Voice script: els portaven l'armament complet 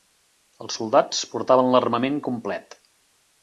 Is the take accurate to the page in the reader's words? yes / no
no